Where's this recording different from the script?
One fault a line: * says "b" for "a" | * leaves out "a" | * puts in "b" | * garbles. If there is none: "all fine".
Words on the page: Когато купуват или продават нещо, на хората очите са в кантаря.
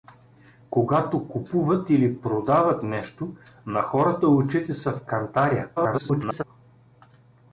* garbles